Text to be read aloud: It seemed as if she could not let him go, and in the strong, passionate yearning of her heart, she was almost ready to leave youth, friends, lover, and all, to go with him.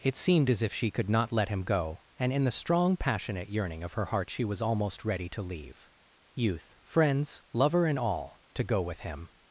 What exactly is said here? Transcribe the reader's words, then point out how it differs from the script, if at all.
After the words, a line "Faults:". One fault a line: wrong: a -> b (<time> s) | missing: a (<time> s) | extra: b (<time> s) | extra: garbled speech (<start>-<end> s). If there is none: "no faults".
It seemed as if she could not let him go, and in the strong, passionate yearning of her heart, she was almost ready to leave youth, friends, lover, and all, to go with him.
Faults:
no faults